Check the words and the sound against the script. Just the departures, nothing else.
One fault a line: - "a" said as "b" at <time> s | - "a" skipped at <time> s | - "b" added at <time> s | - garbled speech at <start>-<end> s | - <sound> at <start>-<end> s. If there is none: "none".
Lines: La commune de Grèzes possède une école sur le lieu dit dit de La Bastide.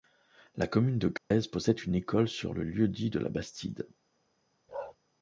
- dropout at 1.2-1.3 s
- "dit" skipped at 3.1 s
- bark at 4.7-5.0 s